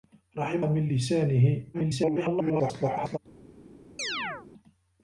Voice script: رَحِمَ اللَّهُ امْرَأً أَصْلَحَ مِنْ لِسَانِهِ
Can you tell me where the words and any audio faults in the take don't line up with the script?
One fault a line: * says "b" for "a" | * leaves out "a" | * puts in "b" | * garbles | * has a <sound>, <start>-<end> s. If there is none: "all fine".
* leaves out "اللَّهُ امْرَأً أَصْلَحَ"
* garbles
* has a chirp, 4.0-4.5 s